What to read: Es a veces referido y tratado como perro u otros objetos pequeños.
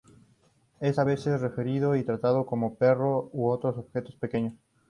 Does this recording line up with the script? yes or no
yes